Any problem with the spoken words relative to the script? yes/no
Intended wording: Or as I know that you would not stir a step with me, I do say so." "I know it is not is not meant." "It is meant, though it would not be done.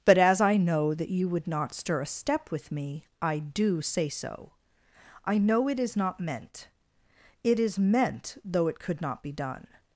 yes